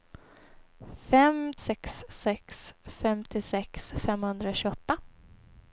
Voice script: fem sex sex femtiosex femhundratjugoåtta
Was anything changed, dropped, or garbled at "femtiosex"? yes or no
no